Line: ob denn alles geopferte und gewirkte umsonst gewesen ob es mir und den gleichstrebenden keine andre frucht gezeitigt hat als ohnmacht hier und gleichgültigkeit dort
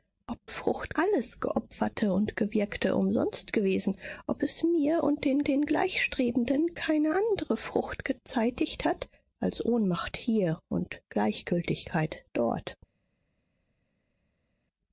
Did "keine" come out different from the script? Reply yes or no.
no